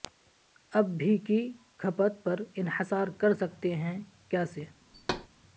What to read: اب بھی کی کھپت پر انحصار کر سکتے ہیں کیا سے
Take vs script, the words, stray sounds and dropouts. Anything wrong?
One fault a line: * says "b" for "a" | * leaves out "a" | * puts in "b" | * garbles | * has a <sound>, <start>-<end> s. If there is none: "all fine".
* has a thud, 4.9-5.3 s